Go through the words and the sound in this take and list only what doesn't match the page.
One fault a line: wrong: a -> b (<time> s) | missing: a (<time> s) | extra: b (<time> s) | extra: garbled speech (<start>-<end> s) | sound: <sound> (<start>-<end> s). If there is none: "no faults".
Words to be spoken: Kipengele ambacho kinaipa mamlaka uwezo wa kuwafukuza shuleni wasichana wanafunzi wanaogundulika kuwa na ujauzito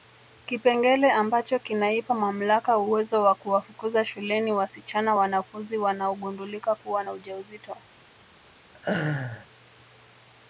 sound: laugh (8.7-9.5 s)